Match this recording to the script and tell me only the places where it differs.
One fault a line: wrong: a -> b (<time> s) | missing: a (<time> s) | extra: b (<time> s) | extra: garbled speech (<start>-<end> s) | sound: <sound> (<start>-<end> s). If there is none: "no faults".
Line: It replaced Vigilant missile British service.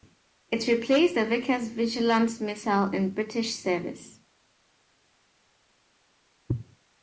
extra: the Vickers (1.1 s)
extra: in (2.9 s)